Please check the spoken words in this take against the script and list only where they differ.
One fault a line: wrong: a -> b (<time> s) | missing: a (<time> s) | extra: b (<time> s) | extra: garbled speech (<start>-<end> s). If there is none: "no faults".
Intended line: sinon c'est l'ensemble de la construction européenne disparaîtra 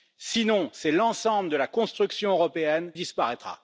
no faults